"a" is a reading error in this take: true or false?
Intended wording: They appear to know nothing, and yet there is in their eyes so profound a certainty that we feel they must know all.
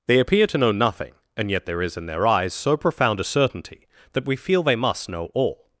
false